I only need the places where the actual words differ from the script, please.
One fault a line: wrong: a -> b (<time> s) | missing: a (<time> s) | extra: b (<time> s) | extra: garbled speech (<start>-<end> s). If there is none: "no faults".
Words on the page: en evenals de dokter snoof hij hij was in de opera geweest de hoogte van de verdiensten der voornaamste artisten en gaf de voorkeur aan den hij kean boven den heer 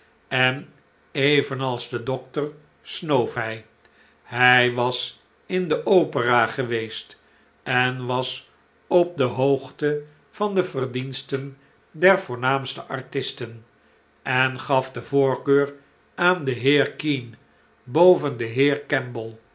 extra: en was op (7.6 s)
wrong: hij -> heer (16.5 s)